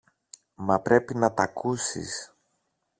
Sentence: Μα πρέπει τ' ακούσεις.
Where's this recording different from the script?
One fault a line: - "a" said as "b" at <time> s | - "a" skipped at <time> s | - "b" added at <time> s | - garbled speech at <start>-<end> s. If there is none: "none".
- "να" added at 1.1 s